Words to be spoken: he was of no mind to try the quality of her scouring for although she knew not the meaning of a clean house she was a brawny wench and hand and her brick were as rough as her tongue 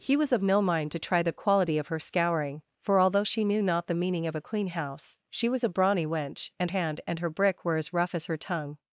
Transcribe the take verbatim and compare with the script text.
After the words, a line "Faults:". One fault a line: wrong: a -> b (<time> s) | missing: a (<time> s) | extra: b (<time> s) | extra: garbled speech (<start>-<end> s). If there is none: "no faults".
he was of no mind to try the quality of her scouring for although she knew not the meaning of a clean house she was a brawny wench and hand and her brick were as rough as her tongue
Faults:
no faults